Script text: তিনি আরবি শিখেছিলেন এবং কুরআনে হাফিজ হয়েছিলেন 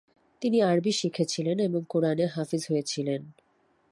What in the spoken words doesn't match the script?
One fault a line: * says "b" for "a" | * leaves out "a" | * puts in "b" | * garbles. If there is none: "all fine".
all fine